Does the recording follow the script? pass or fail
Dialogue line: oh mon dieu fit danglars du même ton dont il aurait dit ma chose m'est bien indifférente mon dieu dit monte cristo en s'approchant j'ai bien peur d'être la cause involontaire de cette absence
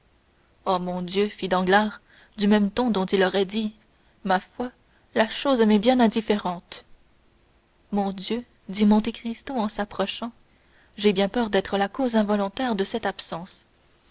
fail